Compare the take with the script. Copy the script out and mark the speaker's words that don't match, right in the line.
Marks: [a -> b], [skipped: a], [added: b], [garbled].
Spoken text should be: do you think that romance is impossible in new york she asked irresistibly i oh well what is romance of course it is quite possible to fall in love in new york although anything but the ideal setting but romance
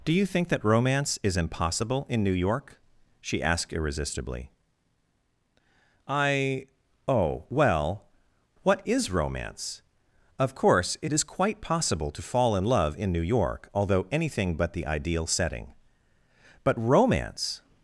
do you think that romance is impossible in new york she asked irresistibly i oh well what is romance of course it is quite possible to fall in love in new york although anything but the ideal setting but romance